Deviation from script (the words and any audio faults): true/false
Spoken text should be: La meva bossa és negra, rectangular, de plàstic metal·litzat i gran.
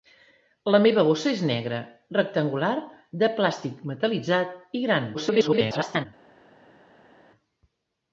true